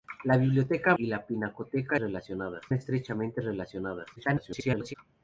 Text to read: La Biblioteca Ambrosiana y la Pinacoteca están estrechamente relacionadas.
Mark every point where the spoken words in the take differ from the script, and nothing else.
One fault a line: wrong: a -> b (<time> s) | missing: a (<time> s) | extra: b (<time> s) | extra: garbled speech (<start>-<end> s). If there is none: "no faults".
missing: Ambrosiana (0.9 s)
wrong: están -> relacionadas (2.0 s)
extra: garbled speech (4.2-4.9 s)